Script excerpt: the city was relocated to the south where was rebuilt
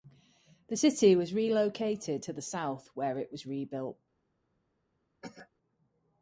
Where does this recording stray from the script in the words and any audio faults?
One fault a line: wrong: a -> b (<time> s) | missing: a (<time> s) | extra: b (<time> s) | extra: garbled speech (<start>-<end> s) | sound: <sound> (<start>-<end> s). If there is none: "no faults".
extra: it (3.2 s)
sound: cough (5.2-5.5 s)